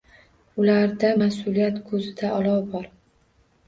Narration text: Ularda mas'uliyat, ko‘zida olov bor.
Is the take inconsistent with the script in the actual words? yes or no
no